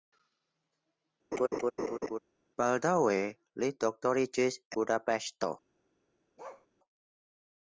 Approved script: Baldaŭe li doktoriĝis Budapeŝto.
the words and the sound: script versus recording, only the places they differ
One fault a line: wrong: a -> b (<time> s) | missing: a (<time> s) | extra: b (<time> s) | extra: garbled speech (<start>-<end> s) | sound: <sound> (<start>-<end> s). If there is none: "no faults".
sound: laugh (1.3-2.2 s)
sound: bark (6.4-6.7 s)